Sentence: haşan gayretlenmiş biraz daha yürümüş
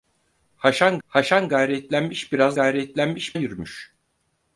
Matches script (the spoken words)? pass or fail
fail